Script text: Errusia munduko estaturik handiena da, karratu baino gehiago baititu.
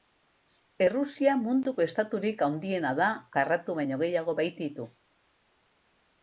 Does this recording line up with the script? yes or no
yes